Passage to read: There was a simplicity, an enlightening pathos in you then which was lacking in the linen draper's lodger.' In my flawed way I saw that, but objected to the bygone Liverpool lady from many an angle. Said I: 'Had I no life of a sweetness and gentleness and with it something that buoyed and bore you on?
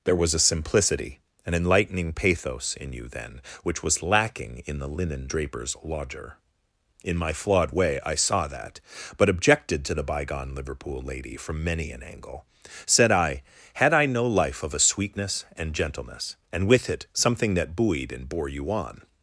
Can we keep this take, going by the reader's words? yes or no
yes